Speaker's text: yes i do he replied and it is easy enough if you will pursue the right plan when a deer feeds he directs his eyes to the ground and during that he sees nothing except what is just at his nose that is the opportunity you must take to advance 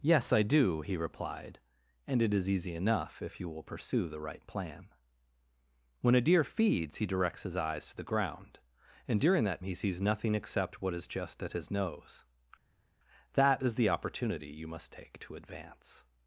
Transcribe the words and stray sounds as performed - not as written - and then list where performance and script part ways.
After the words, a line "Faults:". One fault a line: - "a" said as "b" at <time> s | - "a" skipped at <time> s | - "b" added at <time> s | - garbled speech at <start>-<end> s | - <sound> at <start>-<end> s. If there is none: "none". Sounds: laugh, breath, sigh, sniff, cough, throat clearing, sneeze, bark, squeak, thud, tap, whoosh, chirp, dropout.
yes i do he replied and it is easy enough if you will pursue the right plan when a deer feeds he directs his eyes to the ground and during that he sees nothing except what is just at his nose that is the opportunity you must take to advance
Faults:
none